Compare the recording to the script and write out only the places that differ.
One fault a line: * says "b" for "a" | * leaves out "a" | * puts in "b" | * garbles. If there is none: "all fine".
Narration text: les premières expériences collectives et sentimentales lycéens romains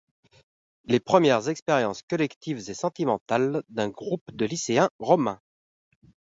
* puts in "d'un groupe de"